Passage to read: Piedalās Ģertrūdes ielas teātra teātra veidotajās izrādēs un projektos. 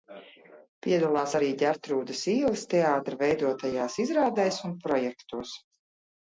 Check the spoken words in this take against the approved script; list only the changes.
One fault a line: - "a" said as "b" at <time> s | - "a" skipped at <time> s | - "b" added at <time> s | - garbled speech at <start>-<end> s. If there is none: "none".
- "arī" added at 1.4 s
- "teātra" skipped at 3.2 s